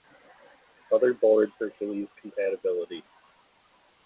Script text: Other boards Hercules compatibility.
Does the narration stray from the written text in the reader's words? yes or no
no